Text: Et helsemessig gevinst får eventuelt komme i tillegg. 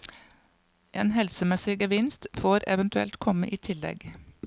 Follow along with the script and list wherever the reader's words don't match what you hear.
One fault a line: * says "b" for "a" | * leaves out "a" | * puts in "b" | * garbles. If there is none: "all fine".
* says "En" for "Et"